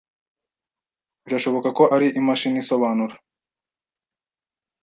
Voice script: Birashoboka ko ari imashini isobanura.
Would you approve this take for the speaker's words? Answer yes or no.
yes